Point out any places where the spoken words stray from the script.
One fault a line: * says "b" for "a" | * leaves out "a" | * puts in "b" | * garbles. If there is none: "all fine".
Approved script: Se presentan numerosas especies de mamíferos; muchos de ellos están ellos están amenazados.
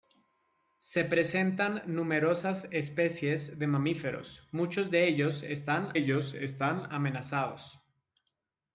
all fine